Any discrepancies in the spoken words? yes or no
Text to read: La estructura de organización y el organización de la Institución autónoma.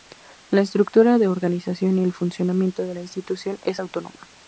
yes